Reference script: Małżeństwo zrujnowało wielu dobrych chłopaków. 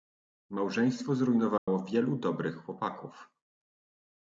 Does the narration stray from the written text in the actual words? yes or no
no